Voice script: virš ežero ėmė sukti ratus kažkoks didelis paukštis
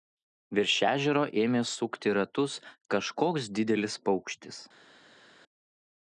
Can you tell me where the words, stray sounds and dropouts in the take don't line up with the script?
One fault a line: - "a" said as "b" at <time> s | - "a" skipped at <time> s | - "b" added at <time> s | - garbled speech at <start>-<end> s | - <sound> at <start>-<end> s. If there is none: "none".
none